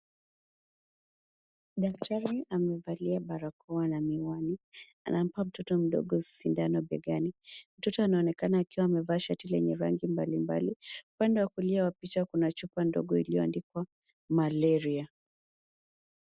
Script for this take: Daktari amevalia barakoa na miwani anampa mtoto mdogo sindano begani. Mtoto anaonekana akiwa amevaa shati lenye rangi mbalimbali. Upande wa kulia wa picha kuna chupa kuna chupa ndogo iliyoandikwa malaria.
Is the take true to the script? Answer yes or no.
no